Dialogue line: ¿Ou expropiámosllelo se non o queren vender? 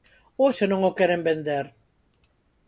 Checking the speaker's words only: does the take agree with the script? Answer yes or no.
no